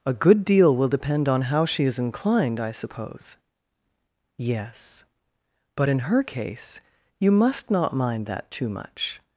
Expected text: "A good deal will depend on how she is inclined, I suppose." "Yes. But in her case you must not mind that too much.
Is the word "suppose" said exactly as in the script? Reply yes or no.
yes